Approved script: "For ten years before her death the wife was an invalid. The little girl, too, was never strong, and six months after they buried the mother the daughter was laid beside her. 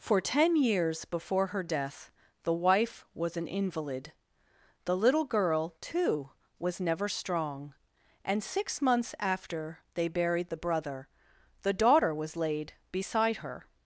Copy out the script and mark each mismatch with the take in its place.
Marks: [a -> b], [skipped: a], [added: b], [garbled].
"For ten years before her death the wife was an invalid. The little girl, too, was never strong, and six months after they buried the [mother -> brother] the daughter was laid beside her.